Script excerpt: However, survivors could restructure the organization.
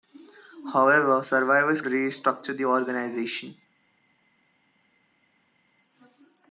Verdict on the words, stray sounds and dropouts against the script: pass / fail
fail